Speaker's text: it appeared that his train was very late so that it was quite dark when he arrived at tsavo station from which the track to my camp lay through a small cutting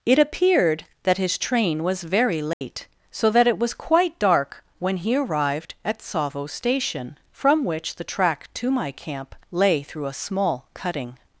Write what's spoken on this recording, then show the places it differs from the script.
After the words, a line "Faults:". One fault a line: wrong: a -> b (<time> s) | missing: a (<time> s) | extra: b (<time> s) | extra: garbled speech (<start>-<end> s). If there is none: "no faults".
it appeared that his train was very late so that it was quite dark when he arrived at tsavo station from which the track to my camp lay through a small cutting
Faults:
no faults